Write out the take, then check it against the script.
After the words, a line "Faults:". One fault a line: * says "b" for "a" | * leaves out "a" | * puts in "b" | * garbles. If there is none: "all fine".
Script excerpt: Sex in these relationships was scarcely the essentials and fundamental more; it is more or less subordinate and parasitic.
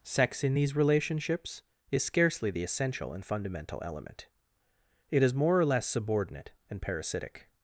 Sex in these relationships is scarcely the essential and fundamental element; it is more or less subordinate and parasitic.
Faults:
* says "is" for "was"
* says "essential" for "essentials"
* says "element" for "more"